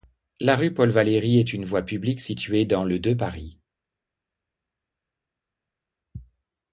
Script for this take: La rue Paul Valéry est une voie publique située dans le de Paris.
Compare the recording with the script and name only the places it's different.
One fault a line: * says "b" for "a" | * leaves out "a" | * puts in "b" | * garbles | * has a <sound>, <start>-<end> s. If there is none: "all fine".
all fine